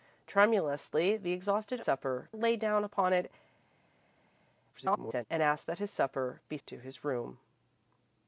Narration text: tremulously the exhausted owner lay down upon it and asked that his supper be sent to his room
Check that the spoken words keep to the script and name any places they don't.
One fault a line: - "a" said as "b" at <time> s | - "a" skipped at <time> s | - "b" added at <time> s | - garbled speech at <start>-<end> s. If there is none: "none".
- "owner" said as "supper" at 1.8 s
- garbled speech at 4.7-5.3 s
- "sent" skipped at 6.6 s